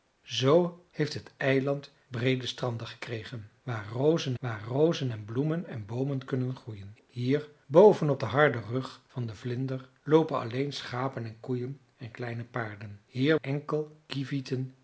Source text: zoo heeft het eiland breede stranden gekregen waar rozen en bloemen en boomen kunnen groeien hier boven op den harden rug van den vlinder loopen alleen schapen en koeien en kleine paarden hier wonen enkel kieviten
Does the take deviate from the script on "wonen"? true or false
true